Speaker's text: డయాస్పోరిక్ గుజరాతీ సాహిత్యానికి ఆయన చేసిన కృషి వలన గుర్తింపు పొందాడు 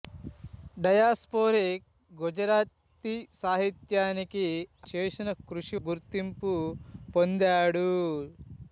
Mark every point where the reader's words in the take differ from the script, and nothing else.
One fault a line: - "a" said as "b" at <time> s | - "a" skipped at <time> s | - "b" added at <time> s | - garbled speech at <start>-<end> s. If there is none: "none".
- "ఆయన" skipped at 4.5 s
- "వలన" skipped at 5.8 s